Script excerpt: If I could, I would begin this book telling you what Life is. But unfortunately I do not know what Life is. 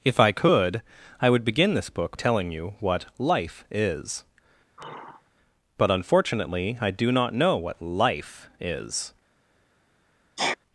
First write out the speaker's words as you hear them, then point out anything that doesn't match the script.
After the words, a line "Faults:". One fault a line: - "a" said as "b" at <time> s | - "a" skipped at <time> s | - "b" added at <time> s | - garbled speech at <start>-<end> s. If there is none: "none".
If I could, I would begin this book telling you what Life is. But unfortunately I do not know what Life is.
Faults:
none